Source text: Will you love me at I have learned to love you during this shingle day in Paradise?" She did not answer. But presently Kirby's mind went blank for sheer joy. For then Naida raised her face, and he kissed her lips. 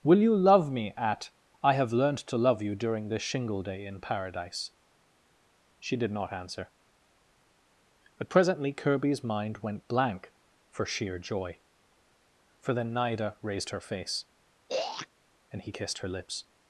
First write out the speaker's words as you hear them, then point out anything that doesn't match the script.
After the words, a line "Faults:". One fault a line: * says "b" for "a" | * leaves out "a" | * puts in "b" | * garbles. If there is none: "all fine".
Will you love me at I have learned to love you during this shingle day in Paradise?" She did not answer. But presently Kirby's mind went blank for sheer joy. For then Naida raised her face, and he kissed her lips.
Faults:
all fine